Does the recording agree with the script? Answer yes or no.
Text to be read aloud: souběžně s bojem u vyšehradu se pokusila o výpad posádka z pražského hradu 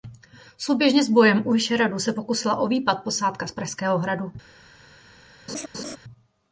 yes